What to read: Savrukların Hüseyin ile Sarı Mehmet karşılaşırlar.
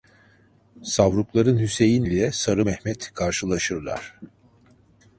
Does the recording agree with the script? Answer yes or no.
yes